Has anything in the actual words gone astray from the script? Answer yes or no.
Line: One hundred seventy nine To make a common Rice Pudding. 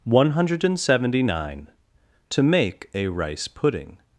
yes